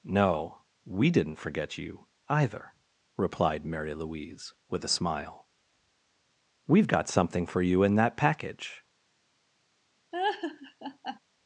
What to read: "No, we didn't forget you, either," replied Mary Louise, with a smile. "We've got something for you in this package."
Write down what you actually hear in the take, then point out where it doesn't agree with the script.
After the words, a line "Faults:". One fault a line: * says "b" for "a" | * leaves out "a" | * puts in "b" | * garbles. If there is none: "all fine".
"No, we didn't forget you, either," replied Mary Louise, with a smile. "We've got something for you in that package."
Faults:
* says "that" for "this"